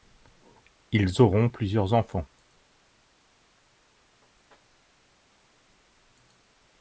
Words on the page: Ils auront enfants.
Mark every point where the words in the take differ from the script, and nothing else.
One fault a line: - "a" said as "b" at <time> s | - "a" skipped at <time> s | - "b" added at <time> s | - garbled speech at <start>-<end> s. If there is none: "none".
- "plusieurs" added at 1.4 s